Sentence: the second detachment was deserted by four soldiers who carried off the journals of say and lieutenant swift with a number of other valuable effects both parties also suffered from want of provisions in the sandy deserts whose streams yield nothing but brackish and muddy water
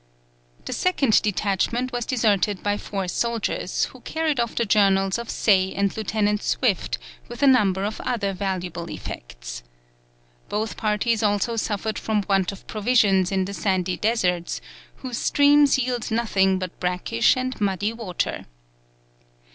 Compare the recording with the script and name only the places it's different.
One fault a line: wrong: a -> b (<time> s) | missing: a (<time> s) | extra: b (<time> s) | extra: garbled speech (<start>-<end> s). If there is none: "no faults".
no faults